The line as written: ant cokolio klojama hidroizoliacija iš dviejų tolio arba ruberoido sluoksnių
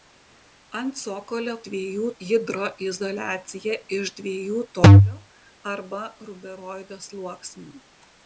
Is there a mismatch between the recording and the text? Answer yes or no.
yes